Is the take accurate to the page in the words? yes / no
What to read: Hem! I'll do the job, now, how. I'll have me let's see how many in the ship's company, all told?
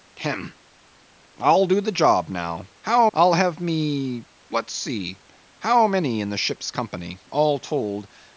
yes